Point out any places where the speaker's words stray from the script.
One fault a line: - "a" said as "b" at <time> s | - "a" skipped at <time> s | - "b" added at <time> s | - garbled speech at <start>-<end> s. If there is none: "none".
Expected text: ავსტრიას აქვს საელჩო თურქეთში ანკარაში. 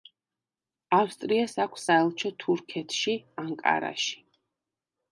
none